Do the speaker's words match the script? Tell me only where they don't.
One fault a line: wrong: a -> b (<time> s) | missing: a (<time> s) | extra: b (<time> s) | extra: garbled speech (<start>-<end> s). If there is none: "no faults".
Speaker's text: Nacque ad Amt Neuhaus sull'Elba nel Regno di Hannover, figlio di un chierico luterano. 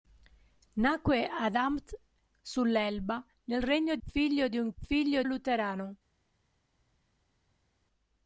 missing: Neuhaus (2.0 s)
missing: di Hannover (4.0 s)
wrong: chierico -> figlio (4.8 s)